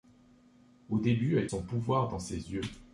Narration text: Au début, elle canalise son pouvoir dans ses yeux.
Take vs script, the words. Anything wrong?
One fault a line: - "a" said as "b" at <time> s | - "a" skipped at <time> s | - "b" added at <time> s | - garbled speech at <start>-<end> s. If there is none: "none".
- "canalise" skipped at 1.5 s